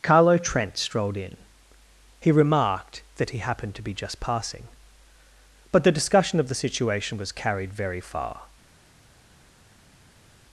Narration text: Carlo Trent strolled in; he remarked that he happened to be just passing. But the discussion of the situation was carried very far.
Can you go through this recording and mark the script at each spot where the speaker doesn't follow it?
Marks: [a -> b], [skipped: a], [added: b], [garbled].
Carlo Trent strolled in; he remarked that he happened to be just passing. But the discussion of the situation was carried very far.